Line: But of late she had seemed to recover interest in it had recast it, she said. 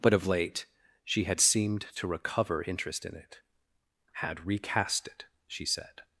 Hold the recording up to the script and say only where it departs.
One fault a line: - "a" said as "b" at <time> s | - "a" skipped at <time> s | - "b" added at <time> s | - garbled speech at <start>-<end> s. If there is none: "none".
none